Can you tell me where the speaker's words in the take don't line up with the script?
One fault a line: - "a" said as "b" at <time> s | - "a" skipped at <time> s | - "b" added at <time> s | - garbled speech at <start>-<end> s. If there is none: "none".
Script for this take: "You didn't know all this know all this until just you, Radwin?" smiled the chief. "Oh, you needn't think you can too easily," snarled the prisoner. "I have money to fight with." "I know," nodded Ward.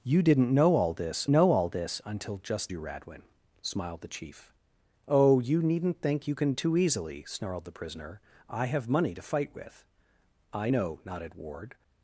none